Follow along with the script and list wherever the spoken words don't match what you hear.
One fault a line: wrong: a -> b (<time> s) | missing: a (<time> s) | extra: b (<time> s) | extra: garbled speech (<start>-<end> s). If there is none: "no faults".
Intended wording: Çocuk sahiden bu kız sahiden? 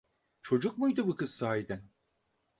wrong: sahiden -> muydu (0.8 s)